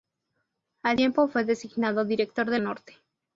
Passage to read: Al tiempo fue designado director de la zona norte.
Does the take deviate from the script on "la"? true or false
true